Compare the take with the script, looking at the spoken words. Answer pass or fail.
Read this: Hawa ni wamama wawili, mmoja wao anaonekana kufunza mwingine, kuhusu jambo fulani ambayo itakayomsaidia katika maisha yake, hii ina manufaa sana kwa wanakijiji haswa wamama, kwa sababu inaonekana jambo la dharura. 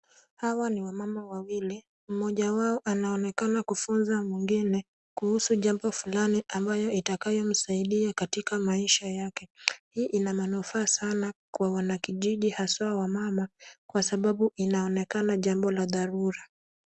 pass